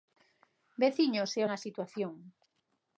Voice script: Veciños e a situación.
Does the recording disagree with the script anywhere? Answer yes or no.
no